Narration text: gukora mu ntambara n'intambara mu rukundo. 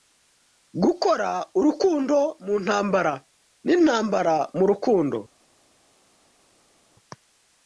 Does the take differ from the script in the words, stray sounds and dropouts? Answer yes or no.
yes